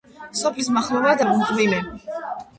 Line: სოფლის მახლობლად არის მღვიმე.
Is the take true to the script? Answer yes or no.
no